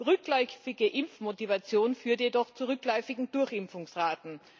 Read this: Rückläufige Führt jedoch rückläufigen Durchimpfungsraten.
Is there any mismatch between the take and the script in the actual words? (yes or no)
yes